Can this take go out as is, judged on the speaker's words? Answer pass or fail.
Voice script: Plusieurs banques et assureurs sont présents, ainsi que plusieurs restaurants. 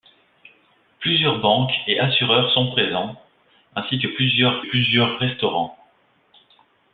fail